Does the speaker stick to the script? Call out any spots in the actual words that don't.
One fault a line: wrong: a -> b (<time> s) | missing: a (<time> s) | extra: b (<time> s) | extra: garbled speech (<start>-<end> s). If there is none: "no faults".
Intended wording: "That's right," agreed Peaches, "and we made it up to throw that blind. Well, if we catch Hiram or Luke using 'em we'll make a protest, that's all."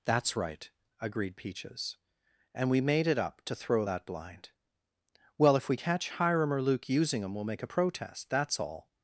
no faults